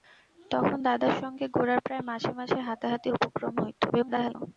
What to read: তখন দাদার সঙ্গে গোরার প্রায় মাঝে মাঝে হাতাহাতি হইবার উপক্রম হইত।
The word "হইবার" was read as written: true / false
false